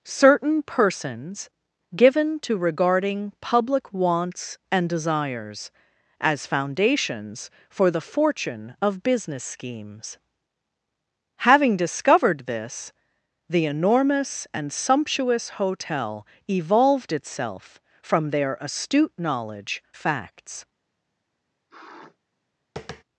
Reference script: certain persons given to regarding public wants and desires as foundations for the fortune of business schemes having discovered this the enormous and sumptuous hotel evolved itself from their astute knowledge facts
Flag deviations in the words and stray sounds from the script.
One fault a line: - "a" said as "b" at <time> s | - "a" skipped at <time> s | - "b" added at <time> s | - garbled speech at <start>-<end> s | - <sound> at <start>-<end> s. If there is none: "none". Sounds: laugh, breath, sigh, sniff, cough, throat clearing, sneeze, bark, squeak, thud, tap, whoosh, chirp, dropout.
- sniff at 21.7-22.2 s
- tap at 22.8-23.0 s